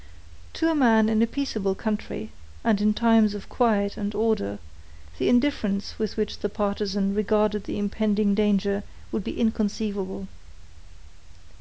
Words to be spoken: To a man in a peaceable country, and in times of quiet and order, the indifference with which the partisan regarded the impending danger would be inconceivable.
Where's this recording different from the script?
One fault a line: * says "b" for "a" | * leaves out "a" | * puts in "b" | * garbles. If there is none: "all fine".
all fine